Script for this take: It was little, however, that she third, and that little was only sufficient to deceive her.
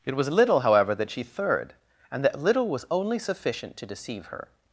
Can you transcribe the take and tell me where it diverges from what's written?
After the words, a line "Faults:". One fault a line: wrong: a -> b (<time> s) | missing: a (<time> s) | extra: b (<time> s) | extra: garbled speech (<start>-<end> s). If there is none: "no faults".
It was little, however, that she third, and that little was only sufficient to deceive her.
Faults:
no faults